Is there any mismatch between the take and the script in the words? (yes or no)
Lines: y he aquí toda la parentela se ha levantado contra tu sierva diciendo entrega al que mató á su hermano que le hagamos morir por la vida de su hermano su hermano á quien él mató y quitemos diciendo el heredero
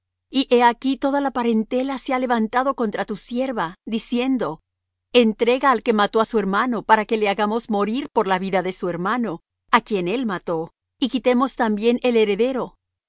yes